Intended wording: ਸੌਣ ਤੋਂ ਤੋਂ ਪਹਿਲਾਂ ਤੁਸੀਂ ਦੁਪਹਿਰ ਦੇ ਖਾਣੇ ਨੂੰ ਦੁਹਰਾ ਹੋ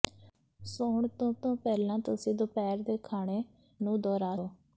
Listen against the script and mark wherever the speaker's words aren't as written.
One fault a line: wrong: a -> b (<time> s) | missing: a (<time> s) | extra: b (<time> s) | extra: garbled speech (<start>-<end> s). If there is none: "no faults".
no faults